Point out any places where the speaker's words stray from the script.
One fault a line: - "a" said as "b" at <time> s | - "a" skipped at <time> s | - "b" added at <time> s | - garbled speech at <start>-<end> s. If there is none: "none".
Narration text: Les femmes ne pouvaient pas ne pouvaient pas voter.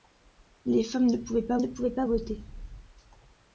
none